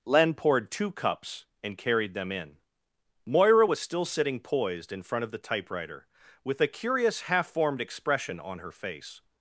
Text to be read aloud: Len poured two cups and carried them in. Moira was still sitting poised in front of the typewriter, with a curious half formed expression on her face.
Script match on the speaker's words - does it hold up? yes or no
yes